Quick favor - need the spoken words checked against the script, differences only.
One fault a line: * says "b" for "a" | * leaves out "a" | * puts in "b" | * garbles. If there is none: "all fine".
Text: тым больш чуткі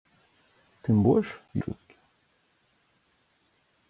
all fine